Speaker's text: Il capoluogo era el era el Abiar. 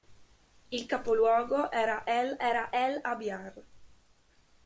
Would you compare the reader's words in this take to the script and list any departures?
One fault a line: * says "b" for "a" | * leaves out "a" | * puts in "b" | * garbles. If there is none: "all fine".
all fine